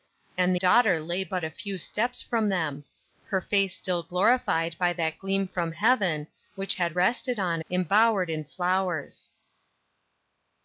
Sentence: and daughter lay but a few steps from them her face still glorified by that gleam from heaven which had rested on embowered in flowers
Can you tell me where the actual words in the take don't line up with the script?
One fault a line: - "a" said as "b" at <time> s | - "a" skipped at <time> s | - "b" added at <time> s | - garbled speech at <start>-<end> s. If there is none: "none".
none